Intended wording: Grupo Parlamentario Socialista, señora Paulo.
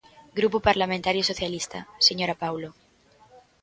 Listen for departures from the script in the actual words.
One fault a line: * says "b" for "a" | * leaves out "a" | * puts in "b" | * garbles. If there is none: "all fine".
all fine